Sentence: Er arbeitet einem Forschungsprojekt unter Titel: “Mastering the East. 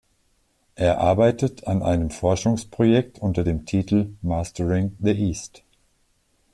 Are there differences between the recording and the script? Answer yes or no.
yes